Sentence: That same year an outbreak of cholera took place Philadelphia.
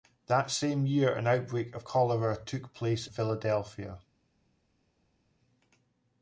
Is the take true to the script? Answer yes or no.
yes